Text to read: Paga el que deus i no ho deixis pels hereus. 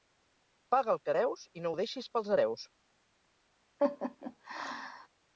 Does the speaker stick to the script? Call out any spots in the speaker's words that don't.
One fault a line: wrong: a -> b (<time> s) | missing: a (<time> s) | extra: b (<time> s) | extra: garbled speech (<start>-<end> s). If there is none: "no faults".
no faults